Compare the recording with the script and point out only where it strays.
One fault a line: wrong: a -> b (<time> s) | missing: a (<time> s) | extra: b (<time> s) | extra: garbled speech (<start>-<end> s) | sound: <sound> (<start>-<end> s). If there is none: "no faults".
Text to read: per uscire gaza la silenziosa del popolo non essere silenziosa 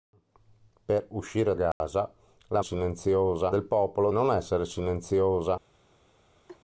sound: dropout (1.7-1.8 s)
sound: laugh (6.5-6.6 s)